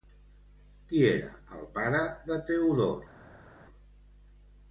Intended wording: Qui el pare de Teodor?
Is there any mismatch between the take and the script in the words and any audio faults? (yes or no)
yes